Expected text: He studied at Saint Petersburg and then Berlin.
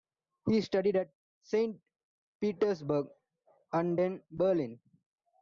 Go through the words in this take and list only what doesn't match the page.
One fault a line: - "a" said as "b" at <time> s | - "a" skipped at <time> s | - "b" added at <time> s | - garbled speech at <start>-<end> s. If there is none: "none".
none